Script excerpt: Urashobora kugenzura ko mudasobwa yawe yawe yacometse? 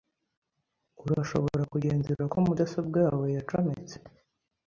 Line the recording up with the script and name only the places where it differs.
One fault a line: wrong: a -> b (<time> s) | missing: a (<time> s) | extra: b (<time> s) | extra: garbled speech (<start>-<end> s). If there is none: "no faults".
missing: yawe (3.3 s)